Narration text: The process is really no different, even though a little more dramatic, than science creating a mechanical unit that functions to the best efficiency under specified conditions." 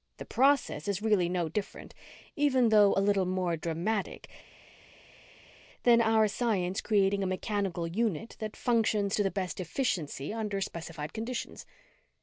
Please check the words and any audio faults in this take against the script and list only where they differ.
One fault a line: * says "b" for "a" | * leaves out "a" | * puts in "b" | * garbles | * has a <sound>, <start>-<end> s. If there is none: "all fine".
* puts in "our"